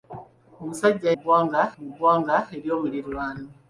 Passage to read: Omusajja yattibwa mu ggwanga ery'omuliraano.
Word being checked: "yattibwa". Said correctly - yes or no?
no